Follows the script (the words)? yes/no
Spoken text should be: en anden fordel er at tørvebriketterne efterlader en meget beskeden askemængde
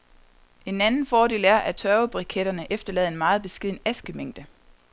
yes